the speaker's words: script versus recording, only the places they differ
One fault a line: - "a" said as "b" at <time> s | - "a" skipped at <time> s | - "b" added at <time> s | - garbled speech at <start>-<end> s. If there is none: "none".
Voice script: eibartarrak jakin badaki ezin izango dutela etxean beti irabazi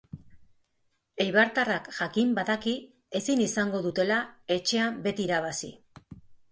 none